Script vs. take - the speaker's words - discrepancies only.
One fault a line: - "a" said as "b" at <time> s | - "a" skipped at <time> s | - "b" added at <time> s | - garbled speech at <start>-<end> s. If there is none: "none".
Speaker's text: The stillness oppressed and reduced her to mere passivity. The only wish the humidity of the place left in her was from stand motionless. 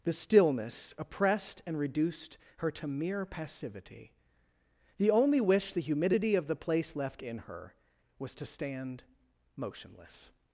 - "from" said as "to" at 8.4 s